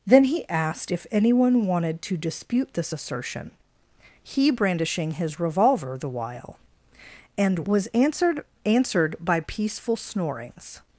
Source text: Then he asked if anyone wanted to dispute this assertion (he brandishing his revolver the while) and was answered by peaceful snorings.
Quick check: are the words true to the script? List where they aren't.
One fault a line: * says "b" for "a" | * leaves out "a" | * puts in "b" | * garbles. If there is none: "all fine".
* puts in "answered"